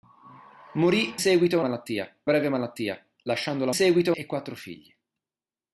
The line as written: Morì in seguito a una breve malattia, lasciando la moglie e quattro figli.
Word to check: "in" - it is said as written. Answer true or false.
false